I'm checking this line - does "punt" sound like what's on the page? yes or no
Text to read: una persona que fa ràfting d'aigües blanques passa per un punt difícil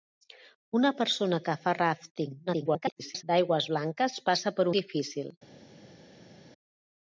no